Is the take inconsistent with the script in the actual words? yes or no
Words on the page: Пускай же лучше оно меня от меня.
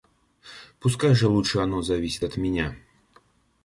yes